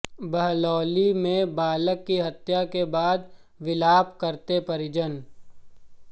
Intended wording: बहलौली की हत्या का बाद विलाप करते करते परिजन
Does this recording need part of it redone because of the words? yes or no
yes